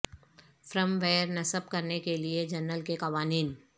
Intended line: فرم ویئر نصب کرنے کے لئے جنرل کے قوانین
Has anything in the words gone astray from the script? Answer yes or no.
no